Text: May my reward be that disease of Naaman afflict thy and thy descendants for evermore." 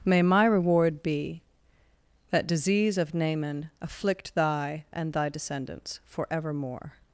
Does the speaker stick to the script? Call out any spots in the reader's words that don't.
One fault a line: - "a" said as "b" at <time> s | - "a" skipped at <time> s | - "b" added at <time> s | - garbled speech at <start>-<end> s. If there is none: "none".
none